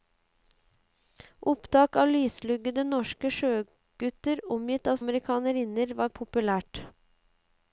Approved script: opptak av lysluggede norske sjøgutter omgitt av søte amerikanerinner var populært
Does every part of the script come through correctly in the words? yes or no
no